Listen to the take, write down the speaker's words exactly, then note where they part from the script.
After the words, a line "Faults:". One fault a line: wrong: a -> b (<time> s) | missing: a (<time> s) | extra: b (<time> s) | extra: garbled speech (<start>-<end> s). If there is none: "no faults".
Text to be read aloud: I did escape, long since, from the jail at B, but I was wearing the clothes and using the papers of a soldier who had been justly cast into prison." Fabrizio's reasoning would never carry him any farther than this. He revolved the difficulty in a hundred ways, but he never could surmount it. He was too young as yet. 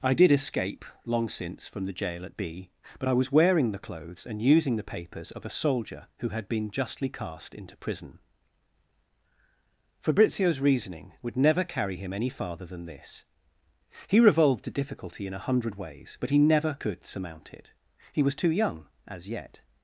I did escape, long since, from the jail at B, but I was wearing the clothes and using the papers of a soldier who had been justly cast into prison." Fabrizio's reasoning would never carry him any farther than this. He revolved the difficulty in a hundred ways, but he never could surmount it. He was too young as yet.
Faults:
no faults